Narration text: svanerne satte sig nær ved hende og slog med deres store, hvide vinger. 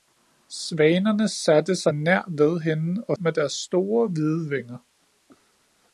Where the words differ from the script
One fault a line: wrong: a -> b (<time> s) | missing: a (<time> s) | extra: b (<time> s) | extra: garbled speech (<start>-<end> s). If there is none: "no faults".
missing: slog (3.2 s)